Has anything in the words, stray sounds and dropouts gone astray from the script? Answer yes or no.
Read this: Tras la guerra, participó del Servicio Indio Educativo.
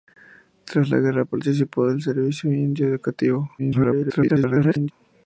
yes